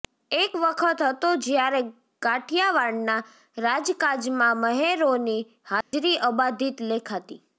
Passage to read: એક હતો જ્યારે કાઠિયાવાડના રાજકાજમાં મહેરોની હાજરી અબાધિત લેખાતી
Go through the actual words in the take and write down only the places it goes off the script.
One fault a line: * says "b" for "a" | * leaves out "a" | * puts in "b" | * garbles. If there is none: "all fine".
* puts in "વખત"